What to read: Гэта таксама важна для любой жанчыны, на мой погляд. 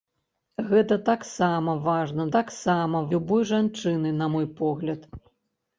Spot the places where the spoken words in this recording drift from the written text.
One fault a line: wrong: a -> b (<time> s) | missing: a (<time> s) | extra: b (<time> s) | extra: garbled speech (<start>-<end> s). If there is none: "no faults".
wrong: для -> таксама (2.4 s)